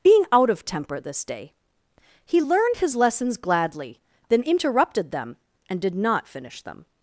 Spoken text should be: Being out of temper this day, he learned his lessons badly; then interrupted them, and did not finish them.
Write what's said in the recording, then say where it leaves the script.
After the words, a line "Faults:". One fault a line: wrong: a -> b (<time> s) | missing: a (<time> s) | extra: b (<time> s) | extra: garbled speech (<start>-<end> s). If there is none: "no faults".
Being out of temper this day, he learned his lessons gladly; then interrupted them, and did not finish them.
Faults:
wrong: badly -> gladly (3.4 s)